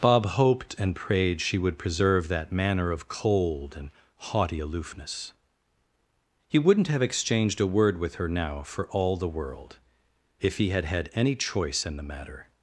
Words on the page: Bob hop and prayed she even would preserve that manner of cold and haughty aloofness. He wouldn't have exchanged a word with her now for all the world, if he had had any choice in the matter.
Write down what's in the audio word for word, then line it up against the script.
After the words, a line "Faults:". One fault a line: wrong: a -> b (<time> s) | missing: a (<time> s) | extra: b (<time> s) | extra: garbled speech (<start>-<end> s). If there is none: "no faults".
Bob hoped and prayed she would preserve that manner of cold and haughty aloofness. He wouldn't have exchanged a word with her now for all the world, if he had had any choice in the matter.
Faults:
wrong: hop -> hoped (0.2 s)
missing: even (1.6 s)